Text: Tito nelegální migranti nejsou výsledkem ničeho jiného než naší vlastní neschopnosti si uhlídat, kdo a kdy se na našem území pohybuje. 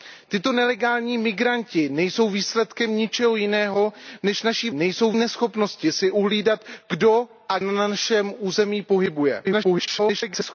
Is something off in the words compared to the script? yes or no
yes